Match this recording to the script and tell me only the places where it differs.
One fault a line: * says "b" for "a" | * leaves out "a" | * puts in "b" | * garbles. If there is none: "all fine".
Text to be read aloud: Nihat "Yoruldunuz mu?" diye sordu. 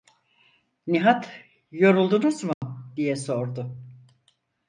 all fine